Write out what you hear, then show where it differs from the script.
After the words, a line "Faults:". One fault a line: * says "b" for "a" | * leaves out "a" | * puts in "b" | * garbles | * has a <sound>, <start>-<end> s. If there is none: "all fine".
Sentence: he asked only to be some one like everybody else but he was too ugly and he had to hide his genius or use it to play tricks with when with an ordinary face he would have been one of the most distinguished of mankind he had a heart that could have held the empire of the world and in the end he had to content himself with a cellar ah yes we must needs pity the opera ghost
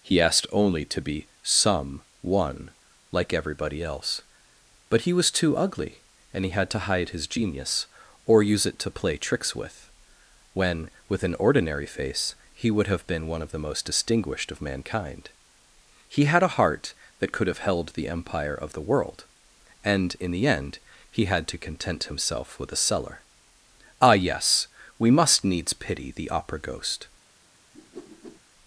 he asked only to be some one like everybody else but he was too ugly and he had to hide his genius or use it to play tricks with when with an ordinary face he would have been one of the most distinguished of mankind he had a heart that could have held the empire of the world and in the end he had to content himself with a cellar ah yes we must needs pity the opera ghost
Faults:
* has a whoosh, 27.7-28.4 s